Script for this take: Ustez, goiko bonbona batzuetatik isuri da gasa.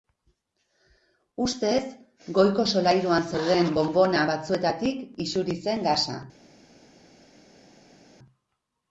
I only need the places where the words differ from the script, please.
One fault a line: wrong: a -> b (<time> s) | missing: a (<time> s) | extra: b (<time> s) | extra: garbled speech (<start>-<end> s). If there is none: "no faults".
extra: solairuan zeuden (2.8 s)
wrong: da -> zen (5.7 s)